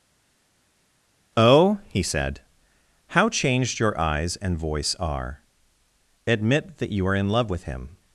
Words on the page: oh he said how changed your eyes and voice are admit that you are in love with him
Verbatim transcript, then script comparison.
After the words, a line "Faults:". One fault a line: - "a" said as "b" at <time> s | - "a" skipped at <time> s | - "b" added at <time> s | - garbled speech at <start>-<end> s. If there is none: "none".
oh he said how changed your eyes and voice are admit that you are in love with him
Faults:
none